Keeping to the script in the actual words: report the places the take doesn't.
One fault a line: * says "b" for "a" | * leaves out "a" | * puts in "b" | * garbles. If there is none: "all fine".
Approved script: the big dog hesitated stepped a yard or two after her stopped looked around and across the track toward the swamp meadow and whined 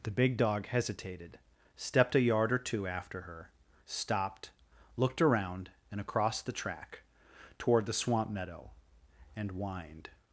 all fine